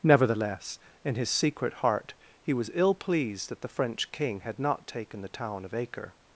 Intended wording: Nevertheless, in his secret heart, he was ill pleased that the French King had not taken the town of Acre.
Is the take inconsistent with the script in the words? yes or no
no